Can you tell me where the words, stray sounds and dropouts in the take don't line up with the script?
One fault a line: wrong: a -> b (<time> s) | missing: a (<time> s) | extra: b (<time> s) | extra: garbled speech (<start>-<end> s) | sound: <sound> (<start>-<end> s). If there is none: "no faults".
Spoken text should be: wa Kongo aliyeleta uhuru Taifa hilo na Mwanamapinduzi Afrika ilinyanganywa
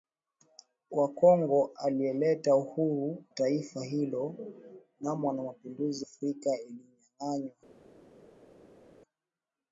no faults